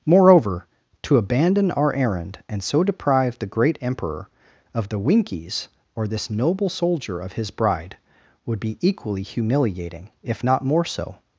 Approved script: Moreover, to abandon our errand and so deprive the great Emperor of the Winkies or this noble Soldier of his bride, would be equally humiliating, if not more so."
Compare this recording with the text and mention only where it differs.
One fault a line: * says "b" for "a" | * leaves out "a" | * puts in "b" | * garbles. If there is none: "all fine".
all fine